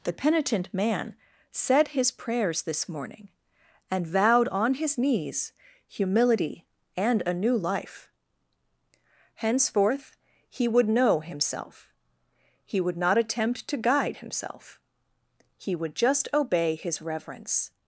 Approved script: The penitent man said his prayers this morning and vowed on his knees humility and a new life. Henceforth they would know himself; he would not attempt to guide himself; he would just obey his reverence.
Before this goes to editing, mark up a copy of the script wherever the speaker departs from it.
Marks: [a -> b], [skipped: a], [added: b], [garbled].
The penitent man said his prayers this morning and vowed on his knees humility and a new life. Henceforth [they -> he] would know himself; he would not attempt to guide himself; he would just obey his reverence.